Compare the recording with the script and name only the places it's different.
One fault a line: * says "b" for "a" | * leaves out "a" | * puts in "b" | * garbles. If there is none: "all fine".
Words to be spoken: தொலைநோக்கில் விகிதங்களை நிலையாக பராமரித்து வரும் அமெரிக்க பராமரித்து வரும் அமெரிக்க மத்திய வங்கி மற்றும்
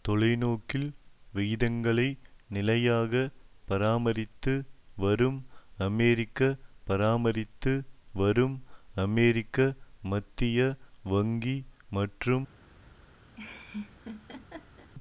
all fine